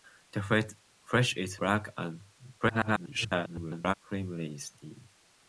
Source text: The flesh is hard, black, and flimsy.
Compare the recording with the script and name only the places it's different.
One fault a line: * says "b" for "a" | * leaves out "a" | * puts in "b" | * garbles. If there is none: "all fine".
* leaves out "hard"
* garbles